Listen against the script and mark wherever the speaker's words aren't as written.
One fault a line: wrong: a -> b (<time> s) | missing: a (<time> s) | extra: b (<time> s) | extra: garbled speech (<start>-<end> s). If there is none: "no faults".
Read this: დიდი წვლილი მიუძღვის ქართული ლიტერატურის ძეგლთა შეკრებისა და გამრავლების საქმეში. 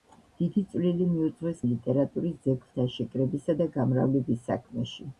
missing: ქართული (1.6 s)